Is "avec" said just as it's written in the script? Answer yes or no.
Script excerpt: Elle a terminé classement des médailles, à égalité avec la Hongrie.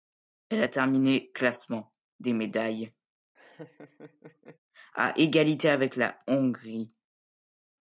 yes